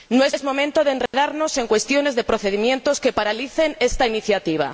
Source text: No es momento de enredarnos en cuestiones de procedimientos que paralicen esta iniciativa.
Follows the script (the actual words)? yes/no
no